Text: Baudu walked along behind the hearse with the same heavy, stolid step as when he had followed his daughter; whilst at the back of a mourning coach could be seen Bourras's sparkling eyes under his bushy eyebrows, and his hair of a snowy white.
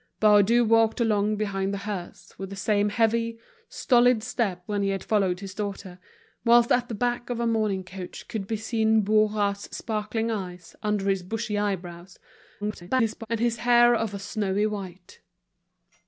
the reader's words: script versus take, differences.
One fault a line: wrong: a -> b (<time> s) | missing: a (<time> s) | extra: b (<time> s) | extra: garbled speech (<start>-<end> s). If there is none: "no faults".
missing: as (4.7 s)
extra: garbled speech (12.6-13.3 s)